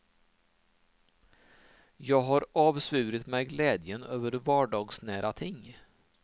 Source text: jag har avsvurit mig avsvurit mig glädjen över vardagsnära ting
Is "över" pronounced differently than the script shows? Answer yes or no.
no